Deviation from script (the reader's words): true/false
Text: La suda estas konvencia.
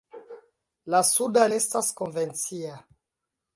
false